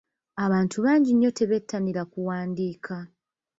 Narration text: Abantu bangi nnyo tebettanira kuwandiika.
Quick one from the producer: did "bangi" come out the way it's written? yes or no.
yes